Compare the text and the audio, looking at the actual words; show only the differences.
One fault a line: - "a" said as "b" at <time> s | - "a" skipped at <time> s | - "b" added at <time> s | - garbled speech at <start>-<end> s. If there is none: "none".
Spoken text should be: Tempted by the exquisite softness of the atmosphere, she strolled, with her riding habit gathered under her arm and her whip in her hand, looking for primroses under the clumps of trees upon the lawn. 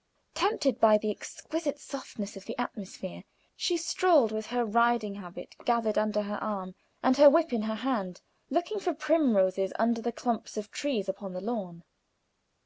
none